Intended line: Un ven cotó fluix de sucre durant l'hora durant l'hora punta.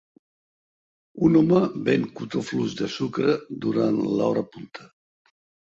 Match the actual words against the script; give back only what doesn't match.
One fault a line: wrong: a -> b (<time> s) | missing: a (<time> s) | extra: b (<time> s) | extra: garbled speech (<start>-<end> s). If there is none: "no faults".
extra: home (1.4 s)
missing: durant l'hora (4.5 s)